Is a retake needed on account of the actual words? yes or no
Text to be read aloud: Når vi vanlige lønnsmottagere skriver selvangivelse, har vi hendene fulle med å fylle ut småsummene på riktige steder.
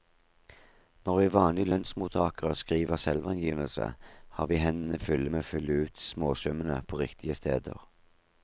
no